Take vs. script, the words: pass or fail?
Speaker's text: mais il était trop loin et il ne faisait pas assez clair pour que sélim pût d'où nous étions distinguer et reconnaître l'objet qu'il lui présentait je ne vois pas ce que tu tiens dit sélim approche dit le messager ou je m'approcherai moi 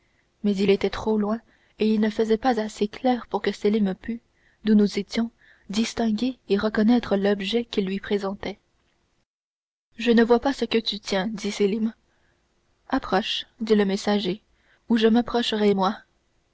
pass